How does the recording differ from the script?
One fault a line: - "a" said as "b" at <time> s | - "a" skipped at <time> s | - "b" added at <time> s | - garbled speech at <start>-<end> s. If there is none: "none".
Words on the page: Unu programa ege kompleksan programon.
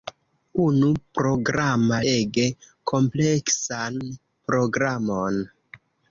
none